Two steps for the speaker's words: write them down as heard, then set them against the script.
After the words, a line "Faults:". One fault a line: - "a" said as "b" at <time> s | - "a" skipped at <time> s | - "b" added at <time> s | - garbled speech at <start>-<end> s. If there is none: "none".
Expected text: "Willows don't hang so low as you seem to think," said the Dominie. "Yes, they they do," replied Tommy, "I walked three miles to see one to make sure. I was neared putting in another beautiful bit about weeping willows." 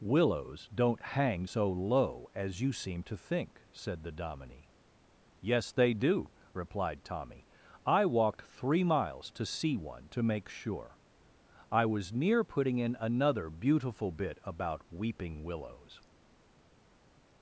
"Willows don't hang so low as you seem to think," said the Dominie. "Yes, they do," replied Tommy, "I walked three miles to see one to make sure. I was near putting in another beautiful bit about weeping willows."
Faults:
- "they" skipped at 5.9 s
- "neared" said as "near" at 12.1 s